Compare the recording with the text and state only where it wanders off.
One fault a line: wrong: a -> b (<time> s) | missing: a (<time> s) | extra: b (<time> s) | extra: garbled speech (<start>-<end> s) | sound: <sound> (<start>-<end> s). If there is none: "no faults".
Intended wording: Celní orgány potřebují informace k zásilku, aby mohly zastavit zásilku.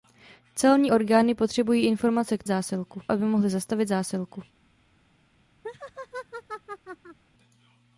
sound: laugh (5.6-7.2 s)